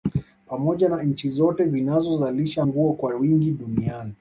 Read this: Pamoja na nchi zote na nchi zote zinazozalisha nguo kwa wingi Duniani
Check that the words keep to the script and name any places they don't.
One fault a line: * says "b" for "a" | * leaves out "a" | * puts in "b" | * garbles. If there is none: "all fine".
* leaves out "na nchi zote"